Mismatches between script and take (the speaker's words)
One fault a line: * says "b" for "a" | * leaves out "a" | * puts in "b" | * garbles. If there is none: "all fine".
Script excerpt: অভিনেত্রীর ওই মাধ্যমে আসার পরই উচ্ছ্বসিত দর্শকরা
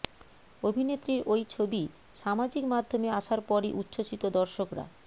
* puts in "ছবি সামাজিক"